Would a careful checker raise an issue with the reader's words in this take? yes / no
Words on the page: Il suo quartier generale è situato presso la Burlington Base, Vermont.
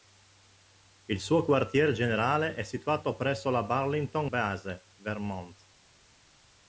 no